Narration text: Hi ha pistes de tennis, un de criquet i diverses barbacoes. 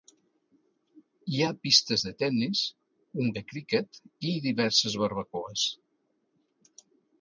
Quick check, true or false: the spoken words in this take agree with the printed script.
true